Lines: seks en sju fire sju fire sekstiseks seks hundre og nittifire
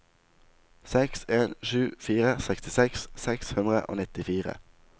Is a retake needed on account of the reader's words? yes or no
yes